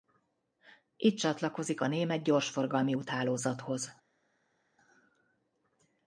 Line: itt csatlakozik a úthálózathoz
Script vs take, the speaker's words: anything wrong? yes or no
yes